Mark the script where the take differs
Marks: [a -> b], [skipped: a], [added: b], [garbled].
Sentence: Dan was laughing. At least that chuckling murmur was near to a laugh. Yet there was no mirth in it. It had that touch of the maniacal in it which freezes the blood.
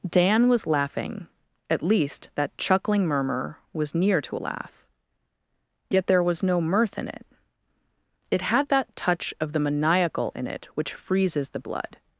Dan was laughing. At least that chuckling murmur was near to a laugh. Yet there was no mirth in it. It had that touch of the maniacal in it which freezes the blood.